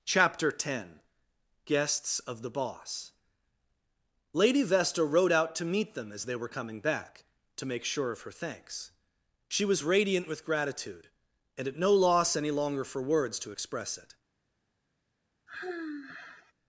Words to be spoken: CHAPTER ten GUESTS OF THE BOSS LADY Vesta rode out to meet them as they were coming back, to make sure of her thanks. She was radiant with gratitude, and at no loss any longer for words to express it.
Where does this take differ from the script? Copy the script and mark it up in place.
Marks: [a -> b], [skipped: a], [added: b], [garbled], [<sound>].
CHAPTER ten GUESTS OF THE BOSS LADY Vesta rode out to meet them as they were coming back, to make sure of her thanks. She was radiant with gratitude, and at no loss any longer for words to express it. [sigh]